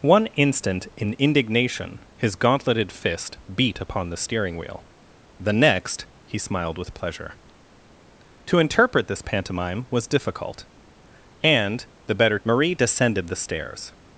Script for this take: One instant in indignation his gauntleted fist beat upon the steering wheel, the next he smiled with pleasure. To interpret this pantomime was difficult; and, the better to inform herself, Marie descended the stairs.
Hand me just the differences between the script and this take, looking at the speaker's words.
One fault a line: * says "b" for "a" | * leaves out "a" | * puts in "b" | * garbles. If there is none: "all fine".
* leaves out "to inform herself"